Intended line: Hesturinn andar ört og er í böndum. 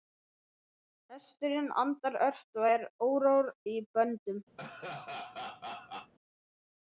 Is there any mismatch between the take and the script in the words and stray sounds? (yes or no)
yes